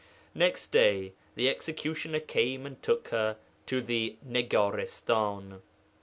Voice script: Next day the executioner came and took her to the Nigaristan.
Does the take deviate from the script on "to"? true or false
false